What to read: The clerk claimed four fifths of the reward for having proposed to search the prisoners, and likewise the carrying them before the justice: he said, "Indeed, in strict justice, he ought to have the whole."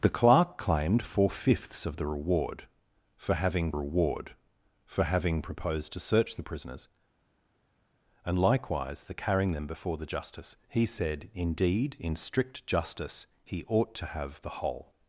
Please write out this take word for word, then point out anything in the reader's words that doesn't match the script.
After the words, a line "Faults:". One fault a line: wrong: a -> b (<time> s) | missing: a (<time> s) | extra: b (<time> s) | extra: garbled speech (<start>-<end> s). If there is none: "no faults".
The clerk claimed four fifths of the reward for having reward for having proposed to search the prisoners, and likewise the carrying them before the justice: he said, "Indeed, in strict justice, he ought to have the whole."
Faults:
extra: reward for having (3.7 s)